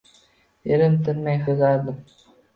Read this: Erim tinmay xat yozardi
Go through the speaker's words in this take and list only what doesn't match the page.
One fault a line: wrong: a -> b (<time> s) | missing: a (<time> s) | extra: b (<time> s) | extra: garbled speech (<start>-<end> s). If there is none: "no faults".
missing: xat (1.4 s)